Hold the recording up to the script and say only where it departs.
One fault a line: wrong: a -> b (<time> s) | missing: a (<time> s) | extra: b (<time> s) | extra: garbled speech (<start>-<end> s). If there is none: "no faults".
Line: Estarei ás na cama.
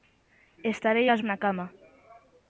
no faults